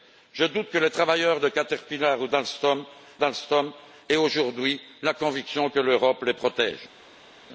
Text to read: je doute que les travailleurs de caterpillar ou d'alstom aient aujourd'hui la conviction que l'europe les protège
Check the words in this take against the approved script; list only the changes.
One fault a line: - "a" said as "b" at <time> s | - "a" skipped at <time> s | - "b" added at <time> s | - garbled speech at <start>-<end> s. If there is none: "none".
- "d'alstom" added at 3.2 s